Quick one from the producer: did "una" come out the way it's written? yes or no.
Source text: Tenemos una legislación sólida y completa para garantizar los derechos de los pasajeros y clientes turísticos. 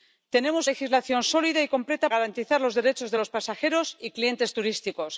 no